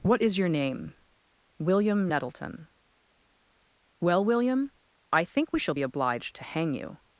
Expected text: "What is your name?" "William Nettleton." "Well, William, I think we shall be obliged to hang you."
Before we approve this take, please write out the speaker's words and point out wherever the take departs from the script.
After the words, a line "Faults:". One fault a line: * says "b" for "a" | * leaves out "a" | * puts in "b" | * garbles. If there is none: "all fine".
"What is your name?" "William Nettleton." "Well, William, I think we shall be obliged to hang you."
Faults:
all fine